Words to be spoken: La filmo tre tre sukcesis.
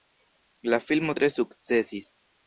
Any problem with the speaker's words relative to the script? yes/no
yes